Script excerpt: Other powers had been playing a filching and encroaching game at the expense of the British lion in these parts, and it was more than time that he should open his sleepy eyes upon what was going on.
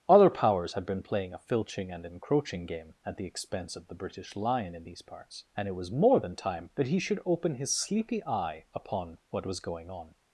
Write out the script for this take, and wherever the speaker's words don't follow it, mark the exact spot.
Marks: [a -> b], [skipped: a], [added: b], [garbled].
Other powers had been playing a filching and encroaching game at the expense of the British lion in these parts, and it was more than time that he should open his sleepy [eyes -> eye] upon what was going on.